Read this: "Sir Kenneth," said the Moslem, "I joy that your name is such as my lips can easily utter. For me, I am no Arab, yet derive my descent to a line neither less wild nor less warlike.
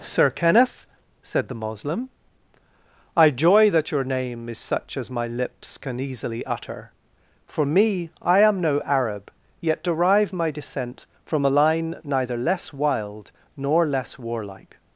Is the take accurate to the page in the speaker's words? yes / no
no